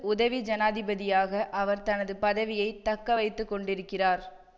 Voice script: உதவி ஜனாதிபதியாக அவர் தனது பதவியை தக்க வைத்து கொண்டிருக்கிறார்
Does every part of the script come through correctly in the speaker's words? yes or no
yes